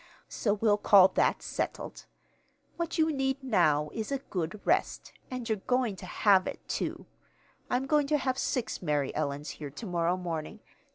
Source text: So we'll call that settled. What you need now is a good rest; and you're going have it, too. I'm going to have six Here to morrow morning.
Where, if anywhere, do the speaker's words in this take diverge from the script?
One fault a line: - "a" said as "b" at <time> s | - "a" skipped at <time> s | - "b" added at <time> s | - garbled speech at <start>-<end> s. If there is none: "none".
- "to" added at 6.0 s
- "Mary Ellens" added at 8.8 s